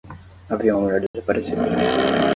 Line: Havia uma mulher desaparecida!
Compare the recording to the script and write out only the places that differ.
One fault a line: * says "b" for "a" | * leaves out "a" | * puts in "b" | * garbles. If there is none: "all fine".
all fine